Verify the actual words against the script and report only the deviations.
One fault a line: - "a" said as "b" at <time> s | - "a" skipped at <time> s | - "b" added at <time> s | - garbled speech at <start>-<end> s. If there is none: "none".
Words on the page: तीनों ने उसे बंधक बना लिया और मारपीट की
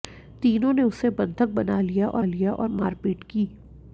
- "लिया और" added at 2.2 s